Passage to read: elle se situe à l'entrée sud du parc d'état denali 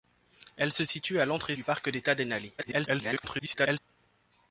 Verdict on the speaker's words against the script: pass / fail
fail